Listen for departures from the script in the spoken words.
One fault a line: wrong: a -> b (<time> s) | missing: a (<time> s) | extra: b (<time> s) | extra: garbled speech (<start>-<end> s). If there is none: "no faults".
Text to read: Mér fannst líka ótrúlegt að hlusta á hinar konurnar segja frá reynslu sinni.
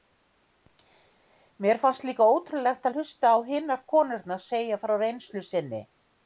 no faults